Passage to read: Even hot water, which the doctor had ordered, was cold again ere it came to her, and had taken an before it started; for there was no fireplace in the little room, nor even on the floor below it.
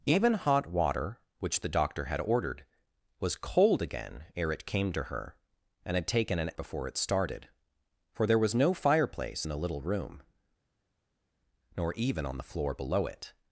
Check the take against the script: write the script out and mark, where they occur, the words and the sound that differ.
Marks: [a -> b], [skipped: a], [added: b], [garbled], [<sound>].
Even hot water, which the doctor had ordered, was cold again ere it came to her, and had taken an before it started; for there was no fireplace in the little room, nor even on the floor below it.